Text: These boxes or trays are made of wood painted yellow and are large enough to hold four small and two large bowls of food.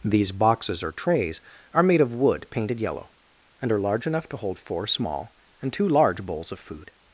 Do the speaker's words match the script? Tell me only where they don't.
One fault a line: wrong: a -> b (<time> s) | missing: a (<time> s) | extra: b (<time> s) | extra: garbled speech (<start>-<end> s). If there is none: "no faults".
no faults